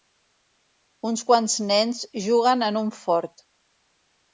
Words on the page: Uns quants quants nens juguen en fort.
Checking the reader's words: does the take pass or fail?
fail